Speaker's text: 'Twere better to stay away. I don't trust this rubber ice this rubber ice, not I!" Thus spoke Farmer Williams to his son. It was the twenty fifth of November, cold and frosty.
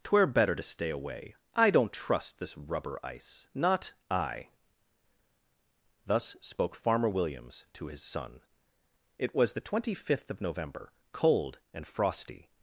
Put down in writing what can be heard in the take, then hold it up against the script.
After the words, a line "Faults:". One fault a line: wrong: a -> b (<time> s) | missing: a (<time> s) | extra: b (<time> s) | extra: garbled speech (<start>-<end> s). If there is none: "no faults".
'Twere better to stay away. I don't trust this rubber ice, not I!" Thus spoke Farmer Williams to his son. It was the twenty fifth of November, cold and frosty.
Faults:
missing: this rubber ice (3.5 s)